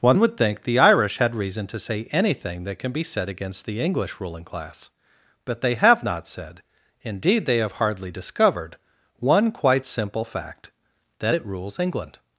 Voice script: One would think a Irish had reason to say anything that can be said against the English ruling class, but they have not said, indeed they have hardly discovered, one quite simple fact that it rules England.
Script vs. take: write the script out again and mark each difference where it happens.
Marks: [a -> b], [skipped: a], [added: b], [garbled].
One would think [a -> the] Irish had reason to say anything that can be said against the English ruling class, but they have not said, indeed they have hardly discovered, one quite simple fact that it rules England.